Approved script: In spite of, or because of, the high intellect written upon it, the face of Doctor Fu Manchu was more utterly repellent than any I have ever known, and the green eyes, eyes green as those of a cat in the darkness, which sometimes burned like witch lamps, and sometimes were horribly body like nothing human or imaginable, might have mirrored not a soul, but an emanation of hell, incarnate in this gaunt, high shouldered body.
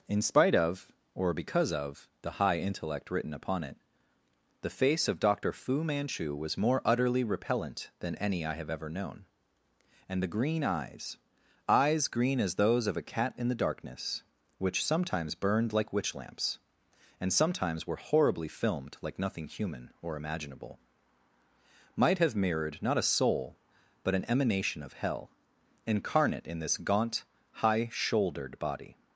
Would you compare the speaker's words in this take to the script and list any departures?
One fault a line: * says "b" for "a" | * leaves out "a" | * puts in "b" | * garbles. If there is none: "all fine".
* says "filmed" for "body"